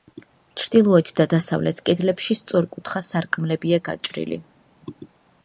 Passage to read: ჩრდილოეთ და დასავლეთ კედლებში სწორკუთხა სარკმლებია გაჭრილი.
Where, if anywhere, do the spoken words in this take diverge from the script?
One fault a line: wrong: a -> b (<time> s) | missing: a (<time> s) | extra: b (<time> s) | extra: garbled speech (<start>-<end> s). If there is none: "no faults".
no faults